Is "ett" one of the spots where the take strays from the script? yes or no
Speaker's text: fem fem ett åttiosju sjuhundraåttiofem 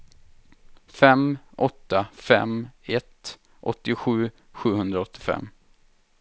no